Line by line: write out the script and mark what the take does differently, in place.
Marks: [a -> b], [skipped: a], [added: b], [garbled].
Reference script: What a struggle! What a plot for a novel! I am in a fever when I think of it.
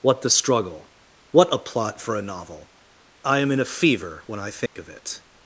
What [a -> the] struggle! What a plot for a novel! I am in a fever when I think of it.